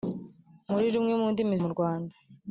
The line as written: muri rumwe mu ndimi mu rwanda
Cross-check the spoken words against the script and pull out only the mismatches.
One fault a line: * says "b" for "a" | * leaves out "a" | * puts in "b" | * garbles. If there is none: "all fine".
all fine